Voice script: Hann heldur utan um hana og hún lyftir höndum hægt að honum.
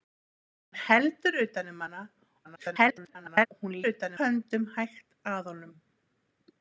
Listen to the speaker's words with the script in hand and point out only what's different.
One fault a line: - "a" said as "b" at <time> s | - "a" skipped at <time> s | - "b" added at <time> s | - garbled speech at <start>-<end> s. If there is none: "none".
- garbled speech at 2.4-3.5 s
- "lyftir" said as "utan" at 3.9 s